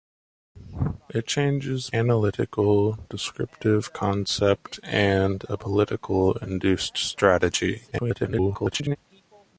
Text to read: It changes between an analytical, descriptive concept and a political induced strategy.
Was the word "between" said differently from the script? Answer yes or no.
yes